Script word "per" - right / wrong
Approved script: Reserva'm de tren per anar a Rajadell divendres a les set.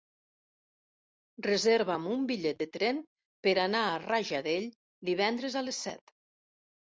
right